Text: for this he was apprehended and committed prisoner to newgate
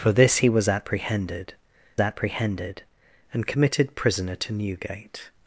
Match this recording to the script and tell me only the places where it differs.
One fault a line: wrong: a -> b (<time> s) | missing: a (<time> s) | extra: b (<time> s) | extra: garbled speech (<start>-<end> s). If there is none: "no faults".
extra: apprehended (2.0 s)